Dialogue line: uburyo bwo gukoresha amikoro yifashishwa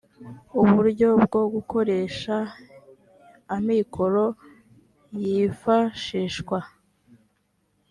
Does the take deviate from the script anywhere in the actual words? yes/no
no